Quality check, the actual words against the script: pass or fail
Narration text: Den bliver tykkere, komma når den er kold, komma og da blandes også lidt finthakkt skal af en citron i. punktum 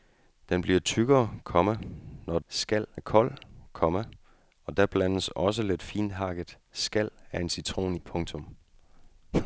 fail